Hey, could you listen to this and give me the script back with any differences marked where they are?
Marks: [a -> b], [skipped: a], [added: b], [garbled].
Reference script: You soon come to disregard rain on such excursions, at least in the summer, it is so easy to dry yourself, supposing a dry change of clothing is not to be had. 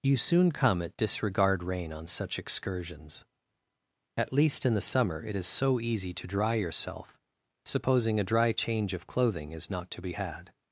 You soon come [to -> at] disregard rain on such excursions, at least in the summer, it is so easy to dry yourself, supposing a dry change of clothing is not to be had.